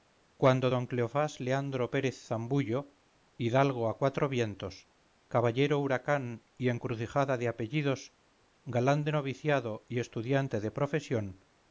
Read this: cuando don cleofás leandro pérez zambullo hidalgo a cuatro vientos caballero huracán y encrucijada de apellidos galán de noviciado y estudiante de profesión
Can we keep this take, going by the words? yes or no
yes